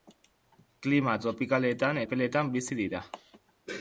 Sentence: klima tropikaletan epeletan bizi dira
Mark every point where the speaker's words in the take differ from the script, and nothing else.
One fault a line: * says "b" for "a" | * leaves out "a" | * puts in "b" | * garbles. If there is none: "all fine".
all fine